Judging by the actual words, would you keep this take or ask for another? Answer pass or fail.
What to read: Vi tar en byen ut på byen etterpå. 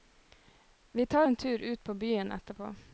fail